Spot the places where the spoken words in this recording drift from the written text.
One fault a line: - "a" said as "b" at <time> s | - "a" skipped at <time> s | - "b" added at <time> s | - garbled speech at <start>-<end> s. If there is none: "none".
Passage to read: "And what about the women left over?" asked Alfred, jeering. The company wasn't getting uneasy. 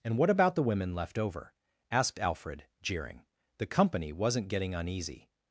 none